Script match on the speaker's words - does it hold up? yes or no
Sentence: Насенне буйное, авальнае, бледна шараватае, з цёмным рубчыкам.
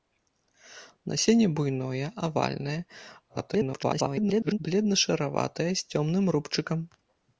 no